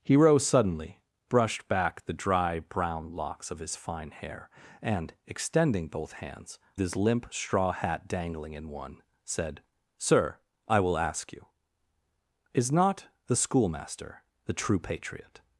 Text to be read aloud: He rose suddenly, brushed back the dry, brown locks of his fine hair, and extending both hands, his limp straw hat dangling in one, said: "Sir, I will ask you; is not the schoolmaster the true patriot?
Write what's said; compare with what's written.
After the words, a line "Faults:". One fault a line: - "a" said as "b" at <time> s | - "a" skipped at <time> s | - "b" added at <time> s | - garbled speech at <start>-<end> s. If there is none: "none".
He rose suddenly, brushed back the dry, brown locks of his fine hair, and extending both hands, his limp straw hat dangling in one, said: "Sir, I will ask you; is not the schoolmaster the true patriot?
Faults:
none